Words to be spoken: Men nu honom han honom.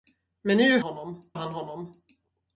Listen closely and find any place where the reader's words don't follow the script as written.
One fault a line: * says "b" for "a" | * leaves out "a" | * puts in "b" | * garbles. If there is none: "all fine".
all fine